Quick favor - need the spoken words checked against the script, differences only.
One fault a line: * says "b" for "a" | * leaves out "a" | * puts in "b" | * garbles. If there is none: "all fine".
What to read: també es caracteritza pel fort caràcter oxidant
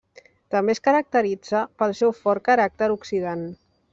* puts in "seu"